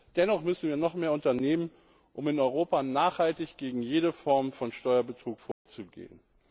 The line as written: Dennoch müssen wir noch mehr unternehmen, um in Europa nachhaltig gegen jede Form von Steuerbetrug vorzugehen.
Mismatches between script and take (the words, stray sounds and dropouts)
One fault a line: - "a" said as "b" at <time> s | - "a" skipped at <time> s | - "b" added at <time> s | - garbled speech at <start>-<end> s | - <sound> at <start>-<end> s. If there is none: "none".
- dropout at 5.5-5.7 s